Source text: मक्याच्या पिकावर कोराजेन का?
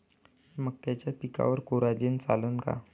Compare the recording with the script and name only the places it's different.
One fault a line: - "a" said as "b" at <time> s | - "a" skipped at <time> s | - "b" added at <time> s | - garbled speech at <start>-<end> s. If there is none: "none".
- "चालन" added at 2.2 s